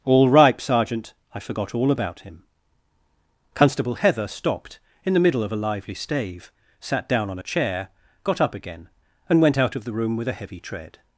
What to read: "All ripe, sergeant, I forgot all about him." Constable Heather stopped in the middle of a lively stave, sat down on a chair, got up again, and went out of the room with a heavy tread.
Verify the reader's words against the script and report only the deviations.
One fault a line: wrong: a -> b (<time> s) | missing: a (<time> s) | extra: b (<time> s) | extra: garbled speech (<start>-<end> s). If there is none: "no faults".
no faults